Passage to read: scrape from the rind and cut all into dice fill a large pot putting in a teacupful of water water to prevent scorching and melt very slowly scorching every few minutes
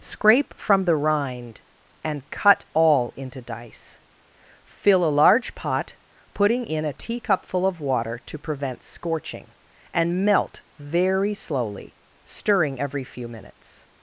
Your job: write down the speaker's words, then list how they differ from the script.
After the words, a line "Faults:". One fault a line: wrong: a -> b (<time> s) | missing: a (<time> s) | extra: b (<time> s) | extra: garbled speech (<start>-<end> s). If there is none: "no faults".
scrape from the rind and cut all into dice fill a large pot putting in a teacupful of water to prevent scorching and melt very slowly stirring every few minutes
Faults:
missing: water (8.2 s)
wrong: scorching -> stirring (12.2 s)